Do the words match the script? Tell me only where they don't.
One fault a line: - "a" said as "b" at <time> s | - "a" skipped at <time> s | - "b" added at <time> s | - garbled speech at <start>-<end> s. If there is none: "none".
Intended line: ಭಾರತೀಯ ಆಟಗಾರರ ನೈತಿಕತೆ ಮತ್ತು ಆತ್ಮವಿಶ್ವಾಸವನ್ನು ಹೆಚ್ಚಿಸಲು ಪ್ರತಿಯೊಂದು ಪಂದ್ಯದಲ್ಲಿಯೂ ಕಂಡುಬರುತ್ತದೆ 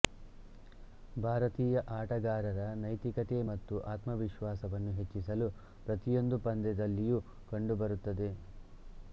none